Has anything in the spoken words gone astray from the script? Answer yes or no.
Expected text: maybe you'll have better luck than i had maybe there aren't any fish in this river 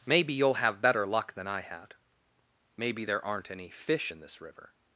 no